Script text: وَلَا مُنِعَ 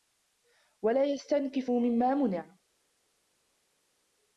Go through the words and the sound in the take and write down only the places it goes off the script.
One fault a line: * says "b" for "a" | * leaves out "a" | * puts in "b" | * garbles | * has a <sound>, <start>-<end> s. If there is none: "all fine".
* puts in "يَسْتَنْكِفُ مِمَّا"